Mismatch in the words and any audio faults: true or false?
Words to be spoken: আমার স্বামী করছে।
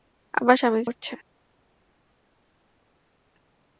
false